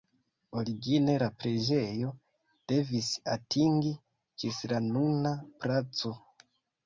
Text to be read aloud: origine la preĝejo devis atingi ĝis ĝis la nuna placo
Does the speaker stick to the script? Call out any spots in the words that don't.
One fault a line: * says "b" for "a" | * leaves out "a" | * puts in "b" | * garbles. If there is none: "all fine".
* leaves out "ĝis"